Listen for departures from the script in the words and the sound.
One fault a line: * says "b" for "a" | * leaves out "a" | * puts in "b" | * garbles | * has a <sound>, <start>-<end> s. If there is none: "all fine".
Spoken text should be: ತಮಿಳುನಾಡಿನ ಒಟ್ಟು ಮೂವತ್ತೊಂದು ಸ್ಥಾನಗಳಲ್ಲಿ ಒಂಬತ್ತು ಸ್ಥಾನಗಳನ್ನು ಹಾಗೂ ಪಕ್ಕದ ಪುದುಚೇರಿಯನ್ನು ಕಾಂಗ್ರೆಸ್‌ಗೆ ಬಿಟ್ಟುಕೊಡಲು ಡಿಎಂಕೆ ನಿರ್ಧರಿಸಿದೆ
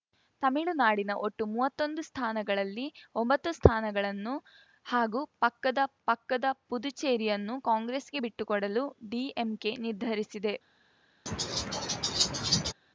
* puts in "ಪಕ್ಕದ"
* has a laugh, 11.3-12.7 s